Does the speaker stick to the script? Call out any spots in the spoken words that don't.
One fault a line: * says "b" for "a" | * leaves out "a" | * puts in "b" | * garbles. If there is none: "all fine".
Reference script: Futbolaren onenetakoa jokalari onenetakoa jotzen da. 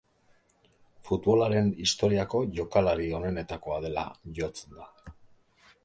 * says "historiako" for "onenetakoa"
* puts in "dela"